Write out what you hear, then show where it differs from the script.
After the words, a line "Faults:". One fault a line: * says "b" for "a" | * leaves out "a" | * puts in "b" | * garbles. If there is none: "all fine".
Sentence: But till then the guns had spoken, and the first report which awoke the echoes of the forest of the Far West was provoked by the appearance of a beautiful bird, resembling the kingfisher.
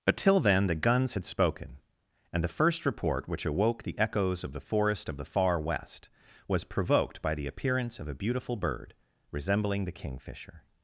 But till then the guns had spoken, and the first report which awoke the echoes of the forest of the Far West was provoked by the appearance of a beautiful bird, resembling the kingfisher.
Faults:
all fine